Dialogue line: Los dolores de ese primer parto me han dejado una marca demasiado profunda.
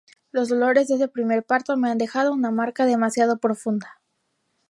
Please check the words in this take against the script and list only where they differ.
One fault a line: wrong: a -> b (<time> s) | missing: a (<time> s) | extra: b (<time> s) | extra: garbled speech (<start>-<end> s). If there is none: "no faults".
no faults